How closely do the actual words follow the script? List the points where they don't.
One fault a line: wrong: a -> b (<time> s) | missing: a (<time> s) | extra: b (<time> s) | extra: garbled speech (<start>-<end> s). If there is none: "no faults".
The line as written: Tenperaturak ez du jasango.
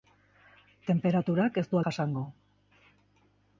no faults